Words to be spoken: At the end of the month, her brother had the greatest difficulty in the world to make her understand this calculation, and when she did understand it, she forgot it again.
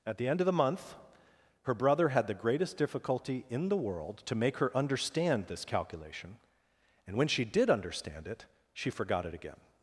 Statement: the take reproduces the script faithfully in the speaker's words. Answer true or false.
true